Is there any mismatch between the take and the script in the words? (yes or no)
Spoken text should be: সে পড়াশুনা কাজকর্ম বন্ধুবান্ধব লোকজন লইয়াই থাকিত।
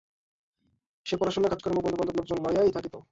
no